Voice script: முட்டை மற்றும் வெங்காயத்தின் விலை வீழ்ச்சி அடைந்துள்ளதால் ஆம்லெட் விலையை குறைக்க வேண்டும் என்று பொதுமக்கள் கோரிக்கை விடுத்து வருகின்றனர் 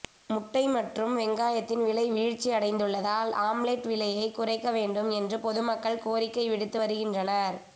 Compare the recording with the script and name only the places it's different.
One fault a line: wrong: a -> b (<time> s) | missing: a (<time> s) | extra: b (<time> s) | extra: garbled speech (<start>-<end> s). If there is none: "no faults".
no faults